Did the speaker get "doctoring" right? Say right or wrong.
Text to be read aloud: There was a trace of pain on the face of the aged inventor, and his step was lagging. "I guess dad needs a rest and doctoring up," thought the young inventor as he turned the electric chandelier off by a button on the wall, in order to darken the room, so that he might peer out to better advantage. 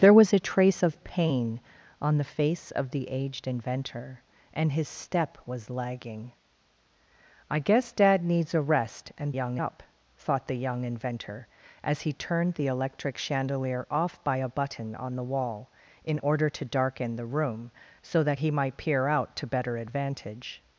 wrong